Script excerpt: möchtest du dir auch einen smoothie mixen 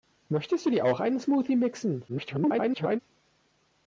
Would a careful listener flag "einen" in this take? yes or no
no